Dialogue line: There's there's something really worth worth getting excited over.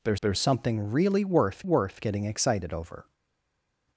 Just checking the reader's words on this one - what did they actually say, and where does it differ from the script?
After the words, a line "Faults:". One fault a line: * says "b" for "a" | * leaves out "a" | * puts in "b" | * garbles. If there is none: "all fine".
There's there's something really worth worth getting excited over.
Faults:
all fine